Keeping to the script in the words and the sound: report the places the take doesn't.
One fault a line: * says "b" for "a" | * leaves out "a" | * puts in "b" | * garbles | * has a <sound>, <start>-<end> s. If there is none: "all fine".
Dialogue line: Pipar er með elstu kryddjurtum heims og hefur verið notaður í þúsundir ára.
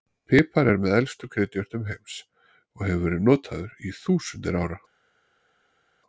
all fine